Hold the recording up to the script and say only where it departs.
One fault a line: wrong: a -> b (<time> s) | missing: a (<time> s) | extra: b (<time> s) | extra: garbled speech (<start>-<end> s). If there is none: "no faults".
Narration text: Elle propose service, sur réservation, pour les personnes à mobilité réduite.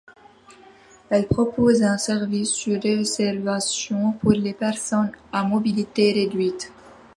extra: un (1.8 s)